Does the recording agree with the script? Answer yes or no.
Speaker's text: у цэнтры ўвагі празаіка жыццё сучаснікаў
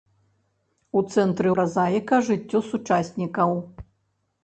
no